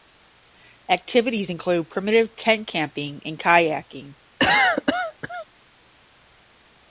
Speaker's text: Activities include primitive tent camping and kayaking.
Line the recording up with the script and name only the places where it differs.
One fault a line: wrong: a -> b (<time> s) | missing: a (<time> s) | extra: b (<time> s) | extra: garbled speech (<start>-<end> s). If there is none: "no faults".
no faults